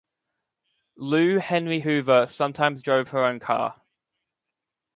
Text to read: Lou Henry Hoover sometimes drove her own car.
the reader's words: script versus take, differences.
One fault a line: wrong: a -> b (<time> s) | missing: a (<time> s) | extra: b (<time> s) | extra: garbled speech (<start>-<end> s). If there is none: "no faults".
no faults